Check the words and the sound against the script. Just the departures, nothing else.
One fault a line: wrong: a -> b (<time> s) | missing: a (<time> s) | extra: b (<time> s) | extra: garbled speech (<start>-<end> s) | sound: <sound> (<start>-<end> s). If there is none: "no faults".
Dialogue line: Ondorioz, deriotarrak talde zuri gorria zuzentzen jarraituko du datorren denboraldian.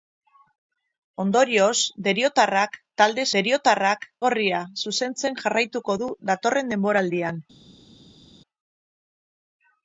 wrong: zuri -> deriotarrak (3.4 s)